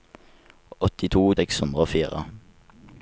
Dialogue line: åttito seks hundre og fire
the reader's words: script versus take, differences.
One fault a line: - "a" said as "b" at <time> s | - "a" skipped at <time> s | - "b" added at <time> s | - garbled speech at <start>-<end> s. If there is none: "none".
none